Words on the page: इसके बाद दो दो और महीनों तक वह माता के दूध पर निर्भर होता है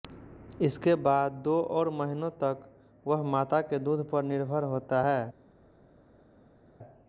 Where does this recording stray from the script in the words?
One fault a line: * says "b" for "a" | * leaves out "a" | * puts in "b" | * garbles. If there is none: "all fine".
* leaves out "दो"